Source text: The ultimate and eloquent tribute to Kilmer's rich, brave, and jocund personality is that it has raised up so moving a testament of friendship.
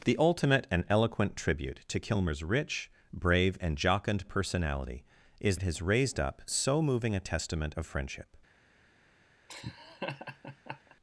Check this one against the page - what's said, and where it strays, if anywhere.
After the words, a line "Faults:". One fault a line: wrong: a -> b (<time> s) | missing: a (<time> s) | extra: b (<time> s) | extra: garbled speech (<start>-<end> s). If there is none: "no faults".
The ultimate and eloquent tribute to Kilmer's rich, brave, and jocund personality is it has raised up so moving a testament of friendship.
Faults:
missing: that (5.6 s)